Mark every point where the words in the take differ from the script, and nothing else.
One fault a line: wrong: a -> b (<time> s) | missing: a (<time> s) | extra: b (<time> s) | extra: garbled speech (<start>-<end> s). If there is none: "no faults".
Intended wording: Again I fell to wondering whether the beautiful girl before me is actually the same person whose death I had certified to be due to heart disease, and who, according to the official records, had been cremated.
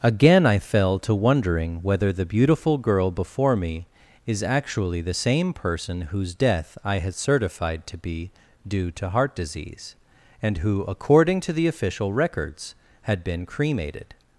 no faults